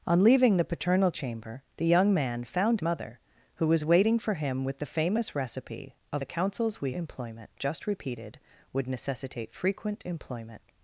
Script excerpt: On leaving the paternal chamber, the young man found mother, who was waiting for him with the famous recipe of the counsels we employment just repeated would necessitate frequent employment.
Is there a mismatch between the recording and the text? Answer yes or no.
no